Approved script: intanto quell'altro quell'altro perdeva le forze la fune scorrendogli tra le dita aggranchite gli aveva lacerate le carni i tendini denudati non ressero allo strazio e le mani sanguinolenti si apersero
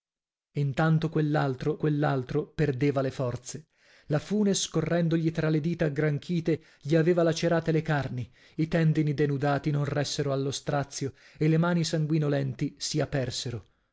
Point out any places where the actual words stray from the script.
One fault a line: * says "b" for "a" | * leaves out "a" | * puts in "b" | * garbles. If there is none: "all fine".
all fine